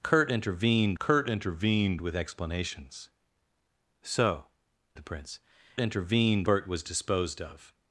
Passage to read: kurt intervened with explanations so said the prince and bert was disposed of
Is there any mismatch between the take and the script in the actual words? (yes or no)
yes